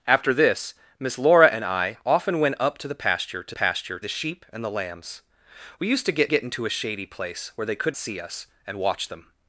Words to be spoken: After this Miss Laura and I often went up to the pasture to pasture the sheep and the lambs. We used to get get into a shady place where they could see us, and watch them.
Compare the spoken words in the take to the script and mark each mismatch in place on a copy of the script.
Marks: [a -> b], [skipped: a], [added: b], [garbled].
After this Miss Laura and I often went up to the pasture to pasture the sheep and the lambs. We used to get get into a shady place where they could see us, and watch them.